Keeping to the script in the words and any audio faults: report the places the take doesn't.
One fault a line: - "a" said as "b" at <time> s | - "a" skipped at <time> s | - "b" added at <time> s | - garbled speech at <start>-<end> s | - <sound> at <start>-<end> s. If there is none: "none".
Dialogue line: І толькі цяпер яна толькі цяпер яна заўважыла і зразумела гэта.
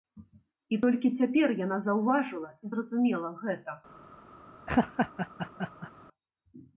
- "толькі цяпер яна" skipped at 1.8 s
- laugh at 4.7-5.9 s